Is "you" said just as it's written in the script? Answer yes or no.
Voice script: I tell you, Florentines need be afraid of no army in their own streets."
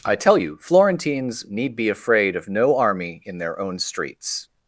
yes